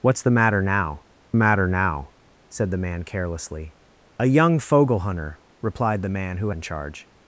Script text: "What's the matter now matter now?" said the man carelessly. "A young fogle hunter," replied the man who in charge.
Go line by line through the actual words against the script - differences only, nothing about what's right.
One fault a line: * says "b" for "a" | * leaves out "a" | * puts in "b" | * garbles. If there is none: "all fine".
all fine